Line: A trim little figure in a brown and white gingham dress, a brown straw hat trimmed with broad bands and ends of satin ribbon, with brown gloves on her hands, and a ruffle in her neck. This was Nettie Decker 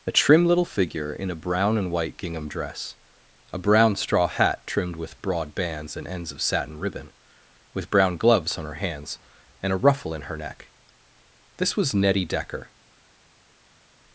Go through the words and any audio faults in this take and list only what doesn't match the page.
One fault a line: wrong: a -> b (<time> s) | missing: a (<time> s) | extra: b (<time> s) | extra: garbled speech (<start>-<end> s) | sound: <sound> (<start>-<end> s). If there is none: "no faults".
no faults